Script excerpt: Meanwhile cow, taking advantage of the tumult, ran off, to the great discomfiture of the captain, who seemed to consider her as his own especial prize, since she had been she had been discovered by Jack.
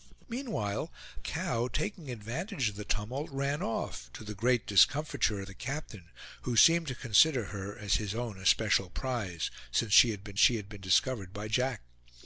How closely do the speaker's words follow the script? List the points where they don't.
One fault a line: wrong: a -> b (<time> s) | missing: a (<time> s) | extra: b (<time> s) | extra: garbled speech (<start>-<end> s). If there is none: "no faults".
no faults